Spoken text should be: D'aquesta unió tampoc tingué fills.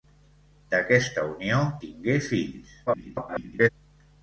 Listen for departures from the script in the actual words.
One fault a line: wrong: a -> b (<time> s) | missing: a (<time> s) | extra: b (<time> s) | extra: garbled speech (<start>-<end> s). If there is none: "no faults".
missing: tampoc (1.6 s)
extra: garbled speech (2.9-3.7 s)